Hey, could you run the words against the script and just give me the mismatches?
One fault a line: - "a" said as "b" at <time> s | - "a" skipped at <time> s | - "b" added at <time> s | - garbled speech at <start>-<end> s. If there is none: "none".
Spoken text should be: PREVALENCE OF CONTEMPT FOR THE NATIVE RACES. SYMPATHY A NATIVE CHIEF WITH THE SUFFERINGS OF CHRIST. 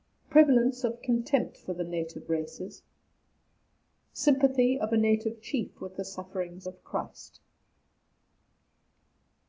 - "OF" added at 4.8 s